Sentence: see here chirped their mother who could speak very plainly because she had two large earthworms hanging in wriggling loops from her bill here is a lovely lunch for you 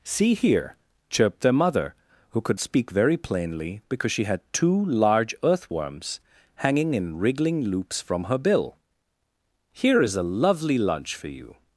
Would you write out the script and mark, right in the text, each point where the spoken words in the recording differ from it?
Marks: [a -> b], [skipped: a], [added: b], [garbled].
see here chirped their mother who could speak very plainly because she had two large earthworms hanging in wriggling loops from her bill here is a lovely lunch for you